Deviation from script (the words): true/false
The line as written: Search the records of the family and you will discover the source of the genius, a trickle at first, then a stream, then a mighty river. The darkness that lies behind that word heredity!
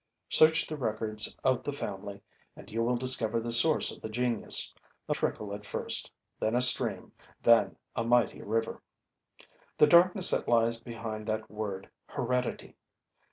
false